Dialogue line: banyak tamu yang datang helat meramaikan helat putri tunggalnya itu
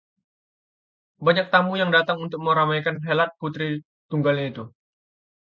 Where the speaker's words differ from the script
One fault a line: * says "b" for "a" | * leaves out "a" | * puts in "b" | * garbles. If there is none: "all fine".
* says "untuk" for "helat"